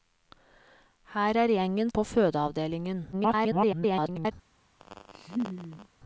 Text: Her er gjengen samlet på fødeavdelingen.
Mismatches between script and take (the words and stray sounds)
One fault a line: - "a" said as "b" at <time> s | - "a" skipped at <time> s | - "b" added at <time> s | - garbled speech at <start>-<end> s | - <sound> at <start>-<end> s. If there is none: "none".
- "samlet" skipped at 1.9 s
- garbled speech at 3.1-4.3 s
- laugh at 4.8-5.9 s